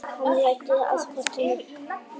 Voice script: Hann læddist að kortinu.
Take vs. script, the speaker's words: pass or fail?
pass